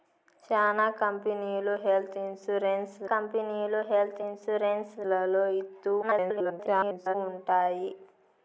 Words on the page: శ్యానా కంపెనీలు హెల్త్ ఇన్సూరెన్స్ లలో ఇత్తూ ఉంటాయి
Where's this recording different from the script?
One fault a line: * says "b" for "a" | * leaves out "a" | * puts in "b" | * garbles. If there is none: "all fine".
* puts in "కంపెనీలు హెల్త్ ఇన్సూరెన్స్"
* garbles